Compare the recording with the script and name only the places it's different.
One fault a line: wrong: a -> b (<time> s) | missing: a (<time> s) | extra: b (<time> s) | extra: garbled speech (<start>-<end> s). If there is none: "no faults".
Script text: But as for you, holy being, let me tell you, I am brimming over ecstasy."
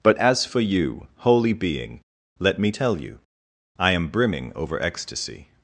no faults